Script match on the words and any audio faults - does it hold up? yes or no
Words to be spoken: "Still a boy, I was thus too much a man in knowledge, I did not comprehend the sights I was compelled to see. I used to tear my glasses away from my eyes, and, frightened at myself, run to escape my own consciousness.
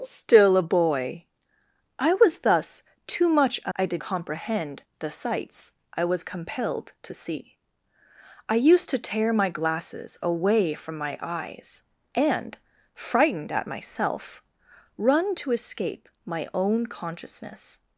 no